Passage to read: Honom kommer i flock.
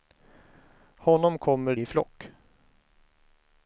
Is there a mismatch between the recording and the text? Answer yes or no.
no